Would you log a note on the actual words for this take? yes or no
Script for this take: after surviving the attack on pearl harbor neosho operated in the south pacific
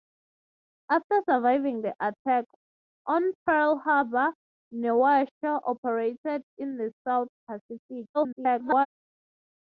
yes